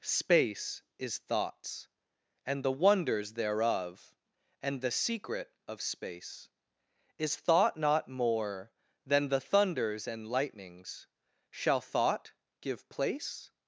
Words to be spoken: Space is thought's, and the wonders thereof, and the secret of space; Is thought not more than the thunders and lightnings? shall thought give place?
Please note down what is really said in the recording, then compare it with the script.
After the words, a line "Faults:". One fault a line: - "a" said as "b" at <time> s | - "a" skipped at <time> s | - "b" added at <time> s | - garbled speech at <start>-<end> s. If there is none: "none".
Space is thought's, and the wonders thereof, and the secret of space; Is thought not more than the thunders and lightnings? shall thought give place?
Faults:
none